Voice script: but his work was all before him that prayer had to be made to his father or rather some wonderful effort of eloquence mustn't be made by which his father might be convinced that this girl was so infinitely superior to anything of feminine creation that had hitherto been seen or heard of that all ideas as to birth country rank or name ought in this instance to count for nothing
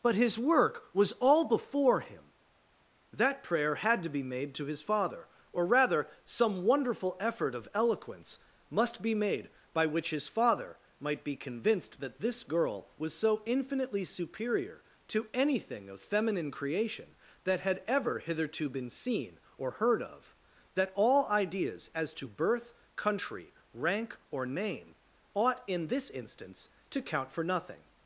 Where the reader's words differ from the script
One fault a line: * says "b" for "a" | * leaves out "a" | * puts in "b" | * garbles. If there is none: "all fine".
* says "must" for "mustn't"
* puts in "ever"